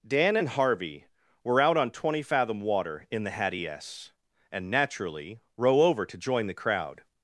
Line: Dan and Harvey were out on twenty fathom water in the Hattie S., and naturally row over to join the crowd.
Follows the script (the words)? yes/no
yes